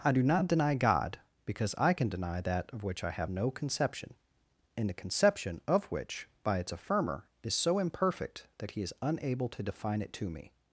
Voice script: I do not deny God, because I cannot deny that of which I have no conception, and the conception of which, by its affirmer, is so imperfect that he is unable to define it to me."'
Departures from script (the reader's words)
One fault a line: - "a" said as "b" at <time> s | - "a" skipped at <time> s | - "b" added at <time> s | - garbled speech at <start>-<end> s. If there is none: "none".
- "cannot" said as "can" at 1.9 s